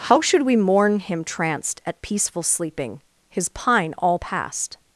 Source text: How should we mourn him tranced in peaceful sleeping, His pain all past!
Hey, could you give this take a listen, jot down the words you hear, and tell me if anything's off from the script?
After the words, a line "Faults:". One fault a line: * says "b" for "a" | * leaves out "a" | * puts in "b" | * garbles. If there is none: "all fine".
How should we mourn him tranced at peaceful sleeping, His pine all past!
Faults:
* says "at" for "in"
* says "pine" for "pain"